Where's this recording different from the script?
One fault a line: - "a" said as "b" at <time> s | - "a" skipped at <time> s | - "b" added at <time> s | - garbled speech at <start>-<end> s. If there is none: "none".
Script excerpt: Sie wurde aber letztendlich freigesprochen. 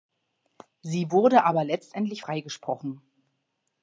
none